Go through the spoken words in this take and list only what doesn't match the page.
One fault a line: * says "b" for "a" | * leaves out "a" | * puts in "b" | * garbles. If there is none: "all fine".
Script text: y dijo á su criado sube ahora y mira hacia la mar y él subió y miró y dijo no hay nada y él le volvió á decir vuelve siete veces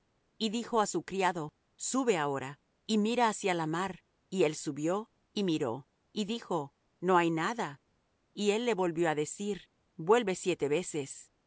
all fine